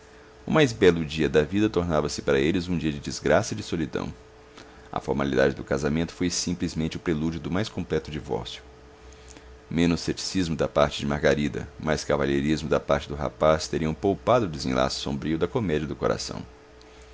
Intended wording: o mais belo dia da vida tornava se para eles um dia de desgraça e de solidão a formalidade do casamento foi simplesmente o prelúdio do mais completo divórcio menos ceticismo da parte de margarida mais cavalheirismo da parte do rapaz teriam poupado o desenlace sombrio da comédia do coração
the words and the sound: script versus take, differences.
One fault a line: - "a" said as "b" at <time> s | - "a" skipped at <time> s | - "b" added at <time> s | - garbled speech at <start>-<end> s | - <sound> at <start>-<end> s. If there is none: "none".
none